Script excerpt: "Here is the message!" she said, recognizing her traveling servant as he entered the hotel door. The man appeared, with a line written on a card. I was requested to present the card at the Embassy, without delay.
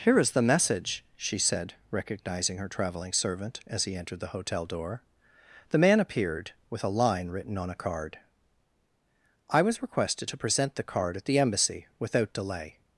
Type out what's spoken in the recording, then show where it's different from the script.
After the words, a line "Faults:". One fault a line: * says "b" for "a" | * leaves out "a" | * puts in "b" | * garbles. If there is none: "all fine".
"Here is the message!" she said, recognizing her traveling servant as he entered the hotel door. The man appeared, with a line written on a card. I was requested to present the card at the Embassy, without delay.
Faults:
all fine